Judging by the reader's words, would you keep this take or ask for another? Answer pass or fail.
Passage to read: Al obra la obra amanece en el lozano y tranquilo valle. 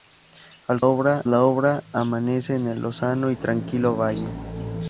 pass